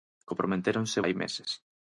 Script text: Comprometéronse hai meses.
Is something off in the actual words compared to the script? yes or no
no